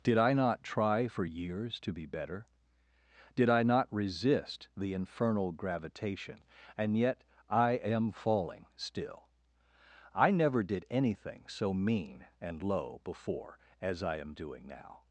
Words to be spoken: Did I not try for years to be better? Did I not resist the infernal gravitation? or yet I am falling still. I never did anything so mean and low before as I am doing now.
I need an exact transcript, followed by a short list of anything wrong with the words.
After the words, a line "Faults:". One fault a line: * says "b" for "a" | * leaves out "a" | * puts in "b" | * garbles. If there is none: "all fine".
Did I not try for years to be better? Did I not resist the infernal gravitation? and yet I am falling still. I never did anything so mean and low before as I am doing now.
Faults:
* says "and" for "or"